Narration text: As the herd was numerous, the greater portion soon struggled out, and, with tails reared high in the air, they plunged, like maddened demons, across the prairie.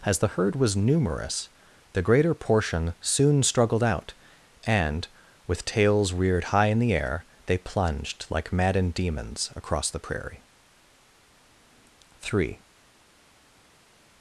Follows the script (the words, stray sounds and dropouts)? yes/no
no